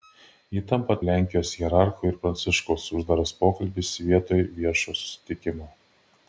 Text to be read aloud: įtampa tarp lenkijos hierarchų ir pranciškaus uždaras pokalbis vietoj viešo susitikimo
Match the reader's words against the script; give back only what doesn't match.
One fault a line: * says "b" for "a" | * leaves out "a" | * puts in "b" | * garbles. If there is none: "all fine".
* leaves out "tarp"